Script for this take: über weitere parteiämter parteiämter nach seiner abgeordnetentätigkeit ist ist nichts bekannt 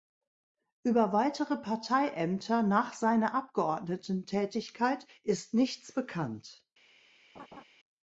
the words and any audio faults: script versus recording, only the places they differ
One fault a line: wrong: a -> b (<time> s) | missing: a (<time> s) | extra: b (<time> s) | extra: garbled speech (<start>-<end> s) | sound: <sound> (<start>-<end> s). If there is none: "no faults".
missing: parteiämter (2.6 s)
missing: ist (5.5 s)
sound: laugh (7.3-7.6 s)